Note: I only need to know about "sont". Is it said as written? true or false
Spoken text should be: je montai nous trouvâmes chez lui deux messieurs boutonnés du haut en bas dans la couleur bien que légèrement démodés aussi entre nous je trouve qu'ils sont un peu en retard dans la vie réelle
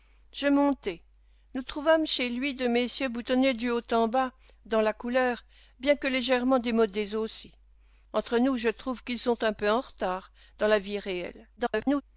true